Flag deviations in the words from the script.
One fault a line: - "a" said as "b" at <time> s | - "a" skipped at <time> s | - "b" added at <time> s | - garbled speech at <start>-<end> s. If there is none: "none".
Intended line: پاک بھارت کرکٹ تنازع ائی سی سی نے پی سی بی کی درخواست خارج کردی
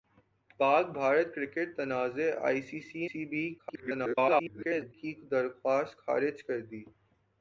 - "نے پی" skipped at 3.1 s
- garbled speech at 3.6-4.9 s